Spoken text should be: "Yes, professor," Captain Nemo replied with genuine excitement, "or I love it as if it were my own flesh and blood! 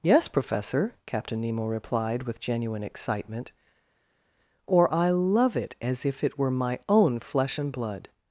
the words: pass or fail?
pass